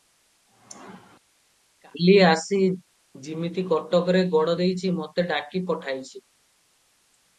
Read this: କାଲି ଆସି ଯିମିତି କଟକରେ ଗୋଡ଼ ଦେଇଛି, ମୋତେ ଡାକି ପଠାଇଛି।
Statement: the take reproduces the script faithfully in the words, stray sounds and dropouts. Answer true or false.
true